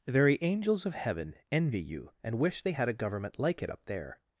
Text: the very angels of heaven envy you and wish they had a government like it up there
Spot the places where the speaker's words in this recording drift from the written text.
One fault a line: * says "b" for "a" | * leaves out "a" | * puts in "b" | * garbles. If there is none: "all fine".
all fine